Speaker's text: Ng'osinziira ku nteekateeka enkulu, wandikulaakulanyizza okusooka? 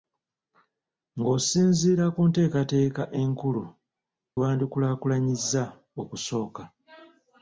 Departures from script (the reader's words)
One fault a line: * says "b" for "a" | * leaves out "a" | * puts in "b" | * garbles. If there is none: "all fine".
all fine